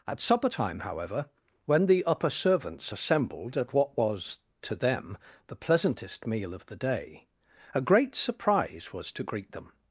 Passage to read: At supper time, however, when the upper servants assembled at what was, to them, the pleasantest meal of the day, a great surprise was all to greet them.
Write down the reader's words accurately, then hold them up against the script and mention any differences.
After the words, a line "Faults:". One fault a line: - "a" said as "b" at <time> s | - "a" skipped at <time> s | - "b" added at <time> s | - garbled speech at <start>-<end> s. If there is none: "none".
At supper time, however, when the upper servants assembled at what was, to them, the pleasantest meal of the day, a great surprise was to greet them.
Faults:
- "all" skipped at 9.1 s